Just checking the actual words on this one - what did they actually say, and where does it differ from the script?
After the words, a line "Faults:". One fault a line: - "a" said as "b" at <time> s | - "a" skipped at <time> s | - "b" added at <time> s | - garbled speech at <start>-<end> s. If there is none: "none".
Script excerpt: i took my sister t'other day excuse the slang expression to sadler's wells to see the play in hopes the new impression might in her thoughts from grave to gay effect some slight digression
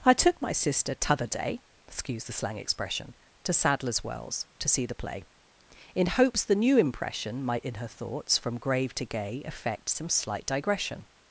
i took my sister t'other day excuse the slang expression to sadler's wells to see the play in hopes the new impression might in her thoughts from grave to gay effect some slight digression
Faults:
none